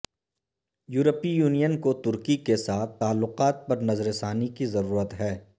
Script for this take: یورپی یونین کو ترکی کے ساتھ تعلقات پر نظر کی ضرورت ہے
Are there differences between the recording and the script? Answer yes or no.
yes